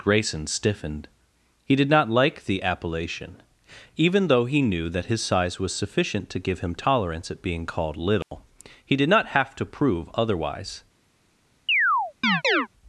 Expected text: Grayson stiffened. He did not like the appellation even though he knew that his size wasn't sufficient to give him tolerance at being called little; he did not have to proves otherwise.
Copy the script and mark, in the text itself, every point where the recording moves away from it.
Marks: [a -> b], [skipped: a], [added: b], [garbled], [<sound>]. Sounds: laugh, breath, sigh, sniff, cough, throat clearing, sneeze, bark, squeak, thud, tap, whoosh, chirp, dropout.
Grayson stiffened. He did not like the appellation even though he knew that his size [wasn't -> was] sufficient to give him tolerance at being called little; [dropout] he did not have to [proves -> prove] otherwise. [chirp]